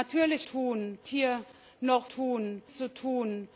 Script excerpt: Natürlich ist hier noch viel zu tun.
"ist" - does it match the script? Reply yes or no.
no